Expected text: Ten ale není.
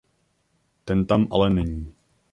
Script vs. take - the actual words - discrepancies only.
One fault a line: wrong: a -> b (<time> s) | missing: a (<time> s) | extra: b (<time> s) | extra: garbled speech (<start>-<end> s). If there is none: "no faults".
extra: tam (1.0 s)